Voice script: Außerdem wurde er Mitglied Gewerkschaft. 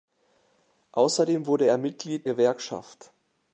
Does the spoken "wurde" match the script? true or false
true